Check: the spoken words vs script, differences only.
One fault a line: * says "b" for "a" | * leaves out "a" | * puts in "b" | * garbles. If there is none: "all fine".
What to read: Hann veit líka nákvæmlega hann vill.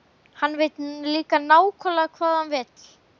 * puts in "hvað"